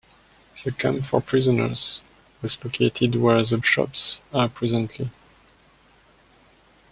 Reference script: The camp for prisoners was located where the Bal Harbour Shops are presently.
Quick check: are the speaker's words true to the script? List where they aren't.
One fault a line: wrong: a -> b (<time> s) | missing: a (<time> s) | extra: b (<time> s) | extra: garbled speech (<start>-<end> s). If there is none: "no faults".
missing: Bal Harbour (3.6 s)